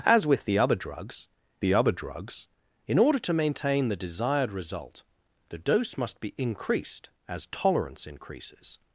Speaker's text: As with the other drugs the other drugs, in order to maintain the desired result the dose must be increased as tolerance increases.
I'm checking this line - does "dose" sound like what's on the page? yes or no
yes